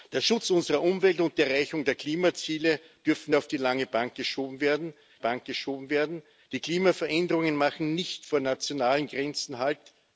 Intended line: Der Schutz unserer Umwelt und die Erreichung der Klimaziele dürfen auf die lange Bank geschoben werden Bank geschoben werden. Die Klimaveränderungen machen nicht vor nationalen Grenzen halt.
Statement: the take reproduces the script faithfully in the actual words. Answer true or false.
true